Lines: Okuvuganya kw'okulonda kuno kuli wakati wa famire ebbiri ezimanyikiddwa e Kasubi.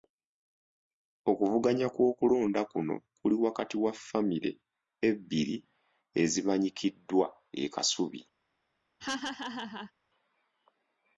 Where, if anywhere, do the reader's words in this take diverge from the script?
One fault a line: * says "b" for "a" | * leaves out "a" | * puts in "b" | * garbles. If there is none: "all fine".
all fine